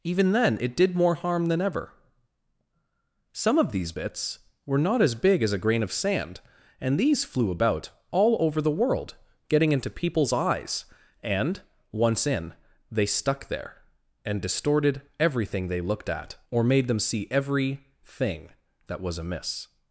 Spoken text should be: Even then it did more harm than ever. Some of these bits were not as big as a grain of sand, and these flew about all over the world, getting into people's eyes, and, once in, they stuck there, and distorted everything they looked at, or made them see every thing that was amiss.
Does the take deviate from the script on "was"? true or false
false